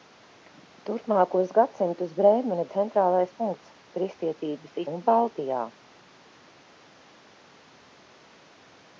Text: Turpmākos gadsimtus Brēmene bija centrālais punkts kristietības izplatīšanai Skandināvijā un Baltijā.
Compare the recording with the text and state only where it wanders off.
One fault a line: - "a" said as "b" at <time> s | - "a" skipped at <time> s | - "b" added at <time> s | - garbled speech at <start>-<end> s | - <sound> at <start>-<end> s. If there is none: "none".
- "bija" skipped at 2.6 s
- "izplatīšanai Skandināvijā" skipped at 4.8 s